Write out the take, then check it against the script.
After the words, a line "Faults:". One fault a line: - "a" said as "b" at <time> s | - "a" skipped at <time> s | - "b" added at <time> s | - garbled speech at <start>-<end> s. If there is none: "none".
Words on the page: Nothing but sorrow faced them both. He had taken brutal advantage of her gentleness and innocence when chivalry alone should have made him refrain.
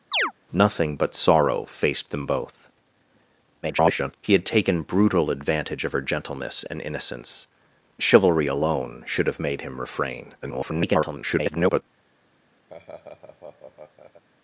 Nothing but sorrow faced them both. [garbled] He had taken brutal advantage of her gentleness and innocence chivalry alone should have made him refrain. [garbled]
Faults:
- garbled speech at 3.6-4.1 s
- "when" skipped at 7.5 s
- garbled speech at 10.4-11.8 s